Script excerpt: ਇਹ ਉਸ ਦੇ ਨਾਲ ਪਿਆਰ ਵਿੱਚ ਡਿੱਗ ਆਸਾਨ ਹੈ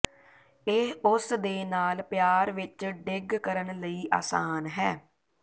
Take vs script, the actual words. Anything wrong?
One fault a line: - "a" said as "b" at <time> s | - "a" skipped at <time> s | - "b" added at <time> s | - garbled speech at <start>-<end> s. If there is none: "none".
- "ਕਰਨ ਲਈ" added at 3.3 s